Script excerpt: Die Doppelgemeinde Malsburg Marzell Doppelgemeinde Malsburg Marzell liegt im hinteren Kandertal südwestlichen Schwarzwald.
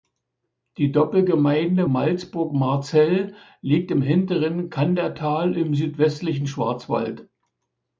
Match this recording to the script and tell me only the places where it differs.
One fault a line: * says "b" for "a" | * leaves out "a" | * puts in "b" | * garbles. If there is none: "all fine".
* leaves out "Doppelgemeinde Malsburg Marzell"
* puts in "im"